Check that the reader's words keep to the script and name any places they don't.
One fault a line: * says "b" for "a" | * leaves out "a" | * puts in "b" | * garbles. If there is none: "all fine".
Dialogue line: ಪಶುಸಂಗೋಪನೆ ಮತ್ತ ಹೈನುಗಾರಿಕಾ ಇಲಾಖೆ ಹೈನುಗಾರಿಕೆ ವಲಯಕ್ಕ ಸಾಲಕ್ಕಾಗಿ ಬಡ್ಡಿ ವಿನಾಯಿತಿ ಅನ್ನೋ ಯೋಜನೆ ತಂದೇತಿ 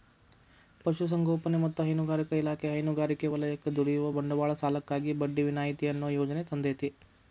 * puts in "ದುಡಿಯುವ ಬಂಡವಾಳ"